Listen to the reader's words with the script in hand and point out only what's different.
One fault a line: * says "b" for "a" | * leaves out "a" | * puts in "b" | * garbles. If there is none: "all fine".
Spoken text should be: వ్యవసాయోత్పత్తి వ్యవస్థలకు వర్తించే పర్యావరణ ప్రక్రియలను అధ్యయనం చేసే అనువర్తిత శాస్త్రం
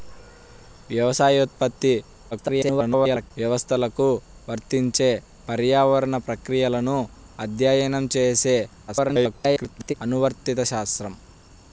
* garbles
* garbles